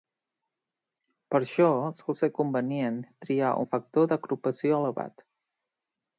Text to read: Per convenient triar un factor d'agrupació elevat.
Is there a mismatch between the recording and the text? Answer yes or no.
yes